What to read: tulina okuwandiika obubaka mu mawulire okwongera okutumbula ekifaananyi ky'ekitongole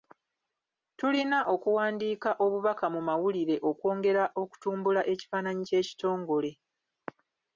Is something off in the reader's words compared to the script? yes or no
no